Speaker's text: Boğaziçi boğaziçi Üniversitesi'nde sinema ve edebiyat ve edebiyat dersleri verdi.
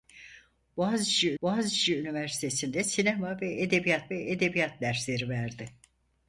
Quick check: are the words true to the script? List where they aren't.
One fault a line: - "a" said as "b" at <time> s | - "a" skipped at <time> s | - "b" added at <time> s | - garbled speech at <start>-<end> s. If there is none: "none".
none